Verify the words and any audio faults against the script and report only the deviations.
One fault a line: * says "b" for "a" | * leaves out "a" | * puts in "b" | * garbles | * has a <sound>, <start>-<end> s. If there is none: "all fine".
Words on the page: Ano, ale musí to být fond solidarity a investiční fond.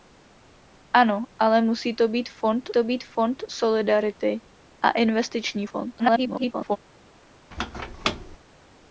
* puts in "to být fond"
* garbles
* has a squeak, 7.5-8.4 s